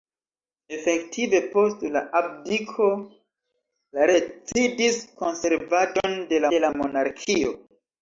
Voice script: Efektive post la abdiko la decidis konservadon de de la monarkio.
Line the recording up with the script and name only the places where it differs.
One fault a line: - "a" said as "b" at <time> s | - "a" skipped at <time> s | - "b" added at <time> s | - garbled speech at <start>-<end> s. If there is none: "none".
none